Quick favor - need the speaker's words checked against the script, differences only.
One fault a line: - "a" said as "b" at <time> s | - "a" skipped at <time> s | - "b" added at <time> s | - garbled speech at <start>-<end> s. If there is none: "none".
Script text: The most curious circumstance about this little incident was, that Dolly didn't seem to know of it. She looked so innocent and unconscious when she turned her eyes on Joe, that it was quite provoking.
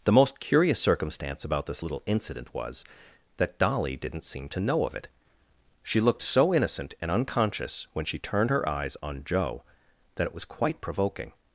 none